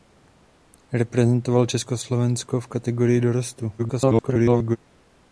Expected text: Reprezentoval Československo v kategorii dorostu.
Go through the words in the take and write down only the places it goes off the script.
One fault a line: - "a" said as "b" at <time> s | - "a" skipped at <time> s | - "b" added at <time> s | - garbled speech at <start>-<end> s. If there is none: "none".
- garbled speech at 3.8-4.8 s